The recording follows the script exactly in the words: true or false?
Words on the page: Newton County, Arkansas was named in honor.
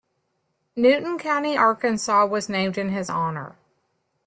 false